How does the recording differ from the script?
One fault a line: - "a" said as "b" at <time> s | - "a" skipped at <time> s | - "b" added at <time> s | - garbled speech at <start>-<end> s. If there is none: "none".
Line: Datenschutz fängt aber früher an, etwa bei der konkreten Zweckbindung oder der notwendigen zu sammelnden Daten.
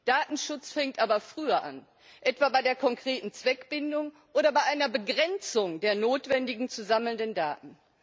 - "bei einer Begrenzung" added at 4.5 s